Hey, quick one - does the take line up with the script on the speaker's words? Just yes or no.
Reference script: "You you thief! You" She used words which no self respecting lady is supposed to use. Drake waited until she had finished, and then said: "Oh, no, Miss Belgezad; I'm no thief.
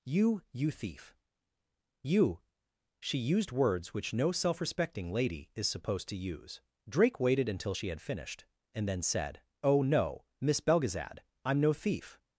yes